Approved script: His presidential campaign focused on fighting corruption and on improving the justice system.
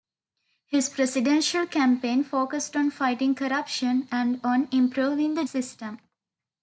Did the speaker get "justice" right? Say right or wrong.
wrong